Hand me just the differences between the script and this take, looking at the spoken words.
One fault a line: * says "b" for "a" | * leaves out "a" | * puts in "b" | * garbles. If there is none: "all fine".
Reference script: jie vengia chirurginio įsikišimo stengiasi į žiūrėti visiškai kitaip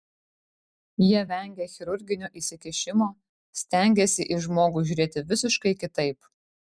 * puts in "žmogų"